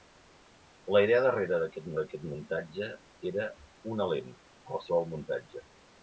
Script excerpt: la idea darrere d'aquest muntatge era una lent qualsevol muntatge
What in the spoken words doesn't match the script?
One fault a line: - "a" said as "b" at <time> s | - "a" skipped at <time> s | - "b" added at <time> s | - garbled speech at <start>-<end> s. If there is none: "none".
- "d'aquest" added at 2.0 s